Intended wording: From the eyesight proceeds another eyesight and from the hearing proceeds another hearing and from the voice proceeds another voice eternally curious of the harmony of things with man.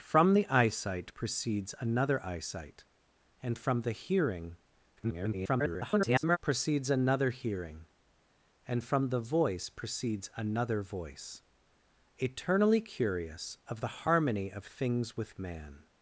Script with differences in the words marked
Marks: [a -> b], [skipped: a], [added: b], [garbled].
From the eyesight proceeds another eyesight and from the hearing [garbled] proceeds another hearing and from the voice proceeds another voice eternally curious of the harmony of things with man.